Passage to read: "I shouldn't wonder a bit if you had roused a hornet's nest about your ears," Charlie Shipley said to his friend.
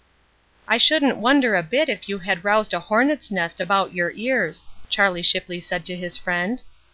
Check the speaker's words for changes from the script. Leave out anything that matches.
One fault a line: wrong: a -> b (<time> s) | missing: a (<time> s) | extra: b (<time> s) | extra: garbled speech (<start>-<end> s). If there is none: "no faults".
no faults